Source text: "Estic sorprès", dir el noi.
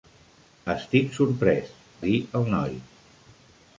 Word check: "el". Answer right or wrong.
right